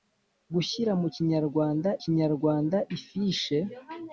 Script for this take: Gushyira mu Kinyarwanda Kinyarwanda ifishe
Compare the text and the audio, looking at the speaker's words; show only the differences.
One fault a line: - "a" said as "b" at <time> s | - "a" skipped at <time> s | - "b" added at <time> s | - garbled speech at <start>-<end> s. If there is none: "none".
none